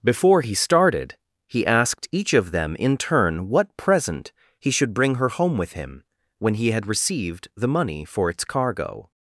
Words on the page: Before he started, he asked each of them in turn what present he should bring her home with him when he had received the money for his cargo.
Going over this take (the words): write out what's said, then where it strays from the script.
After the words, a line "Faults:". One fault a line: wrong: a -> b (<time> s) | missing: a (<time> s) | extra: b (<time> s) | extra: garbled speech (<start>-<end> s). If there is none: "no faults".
Before he started, he asked each of them in turn what present he should bring her home with him when he had received the money for its cargo.
Faults:
wrong: his -> its (8.3 s)